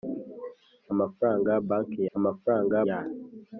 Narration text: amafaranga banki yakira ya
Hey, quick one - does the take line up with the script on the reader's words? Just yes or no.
no